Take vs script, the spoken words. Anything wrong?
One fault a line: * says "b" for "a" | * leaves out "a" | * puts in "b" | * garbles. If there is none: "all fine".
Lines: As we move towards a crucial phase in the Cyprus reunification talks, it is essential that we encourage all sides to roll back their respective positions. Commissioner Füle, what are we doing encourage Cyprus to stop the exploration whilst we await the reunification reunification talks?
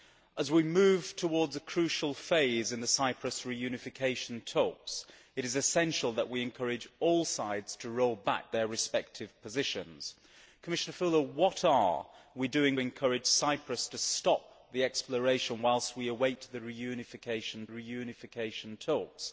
all fine